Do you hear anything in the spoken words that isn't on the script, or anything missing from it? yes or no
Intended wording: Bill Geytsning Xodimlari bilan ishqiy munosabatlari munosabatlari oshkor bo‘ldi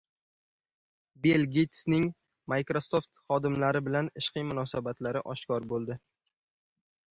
yes